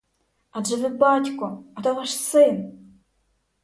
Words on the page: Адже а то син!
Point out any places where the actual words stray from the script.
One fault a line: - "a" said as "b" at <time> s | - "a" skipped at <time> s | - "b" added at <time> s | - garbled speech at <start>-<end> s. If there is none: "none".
- "ви батько" added at 0.8 s
- "ваш" added at 1.9 s